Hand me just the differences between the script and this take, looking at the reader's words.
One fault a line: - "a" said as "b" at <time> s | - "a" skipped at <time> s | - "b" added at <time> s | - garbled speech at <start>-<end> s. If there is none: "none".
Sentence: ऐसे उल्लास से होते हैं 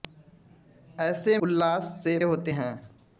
none